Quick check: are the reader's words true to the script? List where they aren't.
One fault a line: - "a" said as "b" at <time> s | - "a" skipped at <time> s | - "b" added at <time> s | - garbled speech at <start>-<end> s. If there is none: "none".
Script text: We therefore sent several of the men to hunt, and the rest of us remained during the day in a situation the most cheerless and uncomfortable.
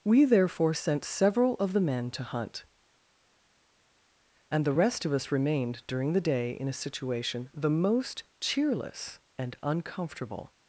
none